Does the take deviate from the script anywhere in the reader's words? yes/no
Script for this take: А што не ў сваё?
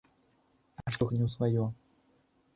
no